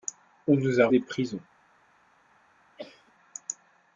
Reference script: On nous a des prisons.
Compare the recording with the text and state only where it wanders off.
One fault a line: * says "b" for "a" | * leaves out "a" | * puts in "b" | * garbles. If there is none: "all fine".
all fine